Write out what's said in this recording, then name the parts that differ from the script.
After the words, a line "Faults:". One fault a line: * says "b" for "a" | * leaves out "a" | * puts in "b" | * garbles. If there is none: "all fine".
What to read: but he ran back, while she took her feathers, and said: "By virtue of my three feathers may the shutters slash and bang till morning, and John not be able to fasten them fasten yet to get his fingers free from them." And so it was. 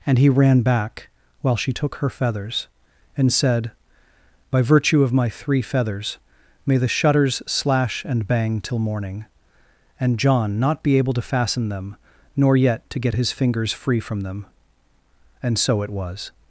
and he ran back, while she took her feathers, and said: "By virtue of my three feathers may the shutters slash and bang till morning, and John not be able to fasten them nor yet to get his fingers free from them." And so it was.
Faults:
* says "and" for "but"
* says "nor" for "fasten"